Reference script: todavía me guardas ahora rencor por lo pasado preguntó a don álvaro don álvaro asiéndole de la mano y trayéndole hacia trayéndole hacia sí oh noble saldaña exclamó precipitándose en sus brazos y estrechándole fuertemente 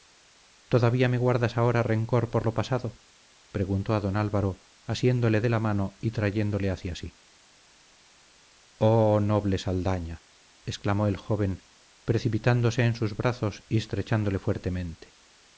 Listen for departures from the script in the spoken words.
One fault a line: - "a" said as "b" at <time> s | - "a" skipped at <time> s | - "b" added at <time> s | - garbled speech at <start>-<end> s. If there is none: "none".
- "don álvaro" skipped at 4.6 s
- "trayéndole hacia" skipped at 6.9 s
- "el joven" added at 11.1 s